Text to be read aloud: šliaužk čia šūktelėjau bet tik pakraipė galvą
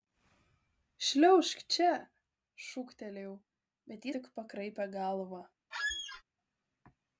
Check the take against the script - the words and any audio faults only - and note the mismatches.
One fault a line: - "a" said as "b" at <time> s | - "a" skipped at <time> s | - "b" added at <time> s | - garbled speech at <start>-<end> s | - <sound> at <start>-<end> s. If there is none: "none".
- squeak at 5.7-6.2 s